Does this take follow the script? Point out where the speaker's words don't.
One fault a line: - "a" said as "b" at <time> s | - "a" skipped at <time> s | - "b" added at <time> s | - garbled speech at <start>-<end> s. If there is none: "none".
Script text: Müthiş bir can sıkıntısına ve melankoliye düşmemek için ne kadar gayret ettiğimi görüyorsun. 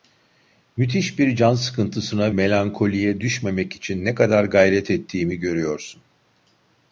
- "ve" skipped at 2.3 s